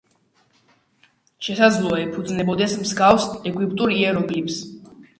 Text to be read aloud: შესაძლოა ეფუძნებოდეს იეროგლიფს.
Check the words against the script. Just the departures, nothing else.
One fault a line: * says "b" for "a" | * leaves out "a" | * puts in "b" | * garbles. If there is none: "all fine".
* puts in "მსგავს ეგვიპტურ"